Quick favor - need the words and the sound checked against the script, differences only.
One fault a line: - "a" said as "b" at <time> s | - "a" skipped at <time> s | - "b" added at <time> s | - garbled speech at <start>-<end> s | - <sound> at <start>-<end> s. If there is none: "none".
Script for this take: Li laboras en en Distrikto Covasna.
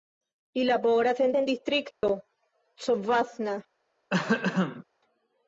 - dropout at 1.9-2.0 s
- throat clearing at 4.1-4.8 s